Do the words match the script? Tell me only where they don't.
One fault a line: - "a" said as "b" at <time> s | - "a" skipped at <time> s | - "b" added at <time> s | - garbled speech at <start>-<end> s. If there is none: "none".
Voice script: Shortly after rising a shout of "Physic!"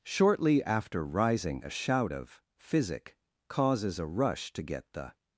- "causes a rush to get the" added at 3.5 s